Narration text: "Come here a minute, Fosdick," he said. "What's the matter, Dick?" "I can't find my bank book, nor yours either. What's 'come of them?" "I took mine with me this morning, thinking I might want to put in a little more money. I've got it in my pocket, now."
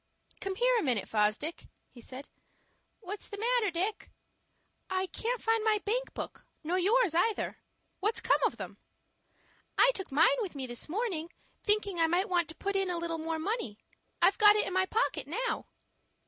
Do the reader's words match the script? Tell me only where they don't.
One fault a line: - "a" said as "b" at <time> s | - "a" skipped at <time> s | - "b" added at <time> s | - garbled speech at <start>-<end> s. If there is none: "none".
none